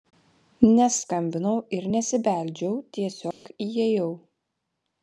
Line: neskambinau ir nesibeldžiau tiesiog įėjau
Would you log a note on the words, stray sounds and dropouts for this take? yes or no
yes